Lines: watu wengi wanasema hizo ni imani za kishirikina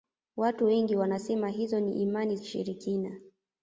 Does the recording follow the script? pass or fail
fail